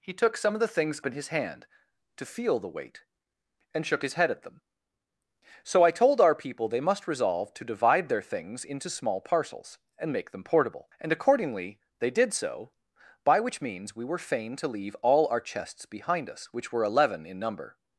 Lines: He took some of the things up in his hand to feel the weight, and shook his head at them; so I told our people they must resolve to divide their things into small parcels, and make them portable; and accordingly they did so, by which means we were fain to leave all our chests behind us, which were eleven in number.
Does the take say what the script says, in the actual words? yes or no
no